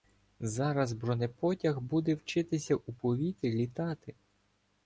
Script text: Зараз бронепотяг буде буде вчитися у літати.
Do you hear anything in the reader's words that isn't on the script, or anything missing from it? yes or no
yes